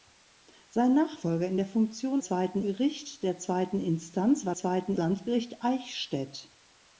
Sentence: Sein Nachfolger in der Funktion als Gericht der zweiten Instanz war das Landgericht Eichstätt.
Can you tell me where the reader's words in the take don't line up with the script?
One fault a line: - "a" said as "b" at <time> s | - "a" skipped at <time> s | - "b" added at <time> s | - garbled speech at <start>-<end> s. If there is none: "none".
- "als" said as "zweiten" at 2.2 s
- "das" said as "zweiten" at 4.5 s